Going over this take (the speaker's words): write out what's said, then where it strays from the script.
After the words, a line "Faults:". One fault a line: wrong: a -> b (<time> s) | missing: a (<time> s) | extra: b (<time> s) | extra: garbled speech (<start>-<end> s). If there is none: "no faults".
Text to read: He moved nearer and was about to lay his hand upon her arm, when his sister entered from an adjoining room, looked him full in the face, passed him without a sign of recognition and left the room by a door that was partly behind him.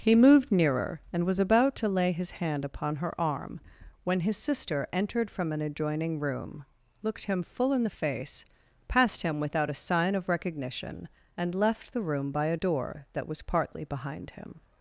He moved nearer and was about to lay his hand upon her arm, when his sister entered from an adjoining room, looked him full in the face, passed him without a sign of recognition and left the room by a door that was partly behind him.
Faults:
no faults